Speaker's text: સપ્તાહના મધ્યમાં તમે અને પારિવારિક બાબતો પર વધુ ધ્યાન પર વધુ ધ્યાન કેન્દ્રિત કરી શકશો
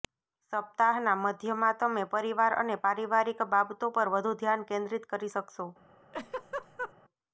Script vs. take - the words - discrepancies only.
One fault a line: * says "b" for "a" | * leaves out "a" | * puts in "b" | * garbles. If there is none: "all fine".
* puts in "પરિવાર"
* leaves out "પર વધુ ધ્યાન"